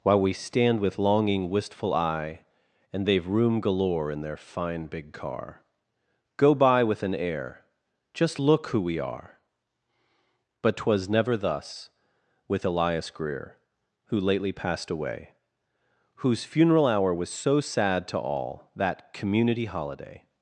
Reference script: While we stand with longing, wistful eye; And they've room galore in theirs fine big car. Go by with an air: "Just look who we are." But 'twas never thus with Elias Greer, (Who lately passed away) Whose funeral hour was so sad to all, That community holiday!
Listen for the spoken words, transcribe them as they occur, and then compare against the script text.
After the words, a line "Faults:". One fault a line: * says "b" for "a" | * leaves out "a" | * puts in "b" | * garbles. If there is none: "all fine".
While we stand with longing, wistful eye; And they've room galore in their fine big car. Go by with an air: "Just look who we are." But 'twas never thus with Elias Greer, (Who lately passed away) Whose funeral hour was so sad to all, That community holiday!
Faults:
* says "their" for "theirs"